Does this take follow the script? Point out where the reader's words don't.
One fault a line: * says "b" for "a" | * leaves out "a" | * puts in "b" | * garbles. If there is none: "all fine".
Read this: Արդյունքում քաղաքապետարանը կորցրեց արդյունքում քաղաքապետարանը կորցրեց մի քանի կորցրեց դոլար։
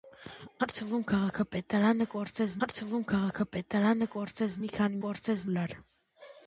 all fine